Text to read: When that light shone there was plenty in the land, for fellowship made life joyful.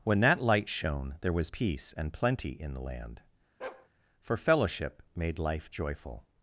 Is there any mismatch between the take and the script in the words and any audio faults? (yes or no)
yes